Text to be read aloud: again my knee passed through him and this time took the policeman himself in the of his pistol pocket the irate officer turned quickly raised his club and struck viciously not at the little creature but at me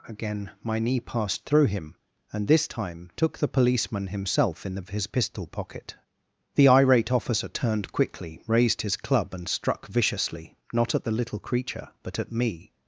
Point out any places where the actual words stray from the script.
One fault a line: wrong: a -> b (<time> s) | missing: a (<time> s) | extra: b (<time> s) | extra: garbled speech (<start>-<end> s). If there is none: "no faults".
no faults